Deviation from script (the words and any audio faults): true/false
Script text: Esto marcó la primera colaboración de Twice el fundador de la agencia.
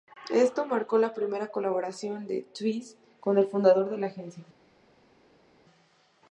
true